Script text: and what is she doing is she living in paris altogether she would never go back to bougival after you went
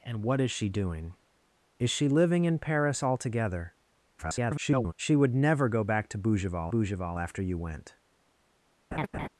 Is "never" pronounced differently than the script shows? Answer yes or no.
no